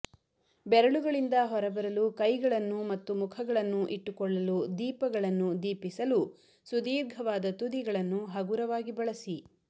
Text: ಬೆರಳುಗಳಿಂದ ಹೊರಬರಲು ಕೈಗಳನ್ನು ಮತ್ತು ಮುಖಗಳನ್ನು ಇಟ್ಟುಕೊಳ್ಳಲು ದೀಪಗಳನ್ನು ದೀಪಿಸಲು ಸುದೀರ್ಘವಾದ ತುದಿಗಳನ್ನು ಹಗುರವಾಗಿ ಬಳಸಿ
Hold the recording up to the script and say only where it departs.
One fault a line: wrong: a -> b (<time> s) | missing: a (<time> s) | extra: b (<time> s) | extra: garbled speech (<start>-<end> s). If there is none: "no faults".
no faults